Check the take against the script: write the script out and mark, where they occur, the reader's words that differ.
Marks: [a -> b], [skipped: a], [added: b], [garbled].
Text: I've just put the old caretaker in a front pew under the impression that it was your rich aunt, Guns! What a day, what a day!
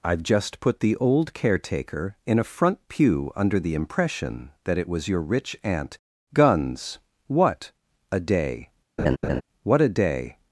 I've just put the old caretaker in a front pew under the impression that it was your rich aunt, Guns! What a day, what a day!